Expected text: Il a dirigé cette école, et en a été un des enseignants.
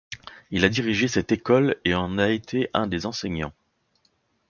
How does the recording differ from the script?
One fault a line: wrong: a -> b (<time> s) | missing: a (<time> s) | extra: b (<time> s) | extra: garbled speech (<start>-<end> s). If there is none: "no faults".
no faults